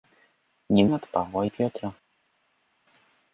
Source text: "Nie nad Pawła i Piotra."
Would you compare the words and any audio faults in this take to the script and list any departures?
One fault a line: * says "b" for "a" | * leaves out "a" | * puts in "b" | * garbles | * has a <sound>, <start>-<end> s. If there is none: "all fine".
all fine